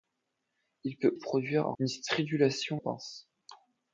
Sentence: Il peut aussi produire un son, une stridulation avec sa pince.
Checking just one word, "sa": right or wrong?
wrong